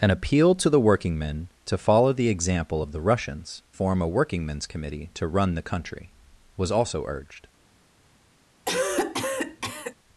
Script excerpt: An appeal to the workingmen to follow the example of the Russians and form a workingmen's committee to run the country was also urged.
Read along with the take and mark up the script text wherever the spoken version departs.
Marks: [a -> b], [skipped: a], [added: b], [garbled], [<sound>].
An appeal to the workingmen to follow the example of the Russians [skipped: and] form a workingmen's committee to run the country was also urged. [cough]